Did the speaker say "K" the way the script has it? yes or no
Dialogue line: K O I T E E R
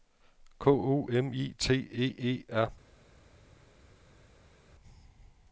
yes